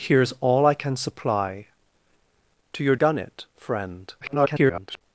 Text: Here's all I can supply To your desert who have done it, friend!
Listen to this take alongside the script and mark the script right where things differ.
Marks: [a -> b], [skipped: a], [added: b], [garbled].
Here's all I can supply To your [skipped: desert who have] done it, friend! [garbled]